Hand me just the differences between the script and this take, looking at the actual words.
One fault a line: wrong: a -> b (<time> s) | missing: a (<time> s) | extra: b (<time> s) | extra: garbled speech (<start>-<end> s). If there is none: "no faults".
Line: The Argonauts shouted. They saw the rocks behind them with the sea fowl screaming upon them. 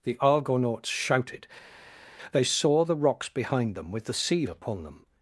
missing: fowl screaming (4.4 s)